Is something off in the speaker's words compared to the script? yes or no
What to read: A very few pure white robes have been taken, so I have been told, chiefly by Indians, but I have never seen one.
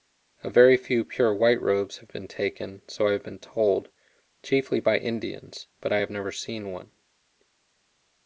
no